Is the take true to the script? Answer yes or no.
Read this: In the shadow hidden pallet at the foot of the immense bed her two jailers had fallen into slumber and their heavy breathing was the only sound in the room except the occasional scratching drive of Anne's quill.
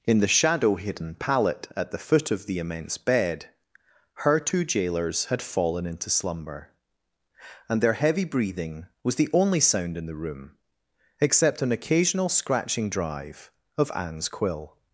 no